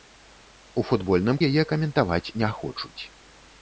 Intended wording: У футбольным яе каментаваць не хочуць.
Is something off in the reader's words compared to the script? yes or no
no